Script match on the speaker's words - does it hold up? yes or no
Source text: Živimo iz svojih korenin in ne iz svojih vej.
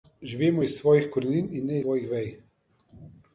no